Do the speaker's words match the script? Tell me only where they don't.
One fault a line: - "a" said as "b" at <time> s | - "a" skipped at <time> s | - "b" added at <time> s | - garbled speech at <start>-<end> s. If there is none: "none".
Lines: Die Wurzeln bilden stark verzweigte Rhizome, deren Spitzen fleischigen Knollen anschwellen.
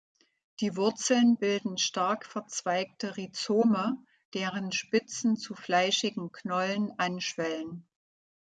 - "zu" added at 5.3 s